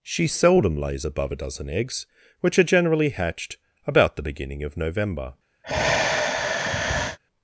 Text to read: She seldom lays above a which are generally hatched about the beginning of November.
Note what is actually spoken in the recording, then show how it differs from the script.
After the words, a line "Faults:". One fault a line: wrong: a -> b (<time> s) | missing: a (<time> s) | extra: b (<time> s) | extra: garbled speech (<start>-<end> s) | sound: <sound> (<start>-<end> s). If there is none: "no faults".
She seldom lays above a dozen eggs, which are generally hatched about the beginning of November.
Faults:
extra: dozen eggs (1.4 s)
sound: sigh (5.6-7.2 s)